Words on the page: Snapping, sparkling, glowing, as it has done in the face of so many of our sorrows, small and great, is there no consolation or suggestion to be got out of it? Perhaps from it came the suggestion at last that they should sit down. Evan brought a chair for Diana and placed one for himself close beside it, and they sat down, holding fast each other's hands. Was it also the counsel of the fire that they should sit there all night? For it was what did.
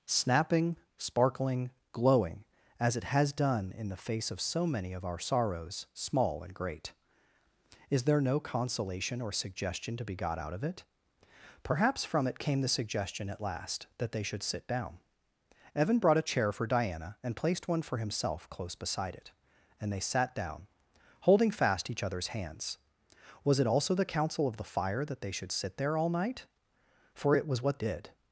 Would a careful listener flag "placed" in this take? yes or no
no